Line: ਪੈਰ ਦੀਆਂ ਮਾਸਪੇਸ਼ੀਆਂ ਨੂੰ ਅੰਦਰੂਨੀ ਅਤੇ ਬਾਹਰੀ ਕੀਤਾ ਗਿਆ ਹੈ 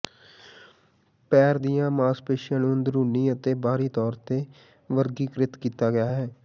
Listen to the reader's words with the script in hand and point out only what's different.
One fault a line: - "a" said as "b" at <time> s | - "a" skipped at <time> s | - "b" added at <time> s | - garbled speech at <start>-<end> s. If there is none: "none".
- "ਤੌਰ ਤੇ ਵਰਗੀਕ੍ਰਿਤ" added at 3.9 s